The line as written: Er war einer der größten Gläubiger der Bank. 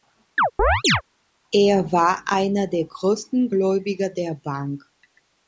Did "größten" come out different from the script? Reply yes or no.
no